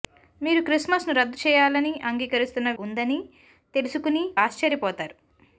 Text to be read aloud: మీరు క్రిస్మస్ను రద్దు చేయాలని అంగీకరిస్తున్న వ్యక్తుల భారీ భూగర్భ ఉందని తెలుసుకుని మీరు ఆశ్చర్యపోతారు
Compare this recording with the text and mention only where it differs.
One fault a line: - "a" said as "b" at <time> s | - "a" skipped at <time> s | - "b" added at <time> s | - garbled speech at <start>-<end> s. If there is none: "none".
- "వ్యక్తుల భారీ భూగర్భ" skipped at 2.7 s
- "మీరు" skipped at 4.3 s